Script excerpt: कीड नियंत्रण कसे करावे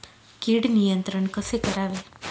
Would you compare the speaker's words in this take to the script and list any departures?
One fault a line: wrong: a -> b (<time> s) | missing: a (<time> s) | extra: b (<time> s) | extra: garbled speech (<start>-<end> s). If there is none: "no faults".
no faults